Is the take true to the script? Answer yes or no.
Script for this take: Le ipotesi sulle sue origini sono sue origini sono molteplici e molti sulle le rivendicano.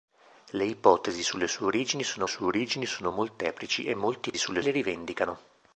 yes